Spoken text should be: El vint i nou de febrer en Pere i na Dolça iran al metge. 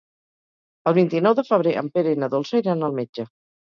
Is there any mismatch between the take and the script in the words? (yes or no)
no